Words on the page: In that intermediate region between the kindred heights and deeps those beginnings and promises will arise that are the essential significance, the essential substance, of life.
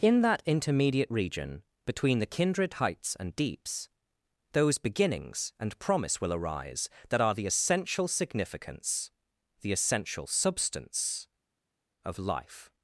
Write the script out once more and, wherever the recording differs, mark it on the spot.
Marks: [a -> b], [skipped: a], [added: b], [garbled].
In that intermediate region between the kindred heights and deeps those beginnings and [promises -> promise] will arise that are the essential significance, the essential substance, of life.